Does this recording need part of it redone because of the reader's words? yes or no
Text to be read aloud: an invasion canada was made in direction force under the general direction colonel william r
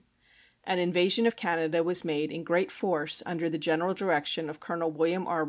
yes